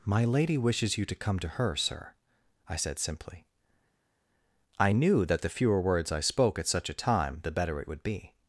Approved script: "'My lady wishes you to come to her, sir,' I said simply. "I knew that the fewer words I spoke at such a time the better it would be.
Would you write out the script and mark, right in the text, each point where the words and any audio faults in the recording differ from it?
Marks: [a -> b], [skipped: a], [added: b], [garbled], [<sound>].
"'My lady wishes you to come to her, sir,' I said simply. "I knew that the fewer words I spoke at such a time the better it would be.